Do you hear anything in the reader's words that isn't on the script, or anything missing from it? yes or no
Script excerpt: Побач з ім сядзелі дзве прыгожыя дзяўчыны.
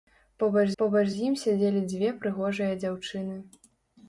yes